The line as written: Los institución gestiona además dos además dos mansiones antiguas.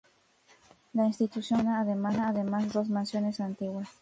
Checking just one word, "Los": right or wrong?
wrong